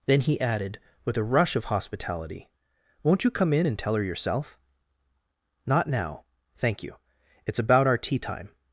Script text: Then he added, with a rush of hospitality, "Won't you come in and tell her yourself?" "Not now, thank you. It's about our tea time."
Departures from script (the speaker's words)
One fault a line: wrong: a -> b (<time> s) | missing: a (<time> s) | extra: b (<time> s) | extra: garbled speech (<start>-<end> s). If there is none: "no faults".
no faults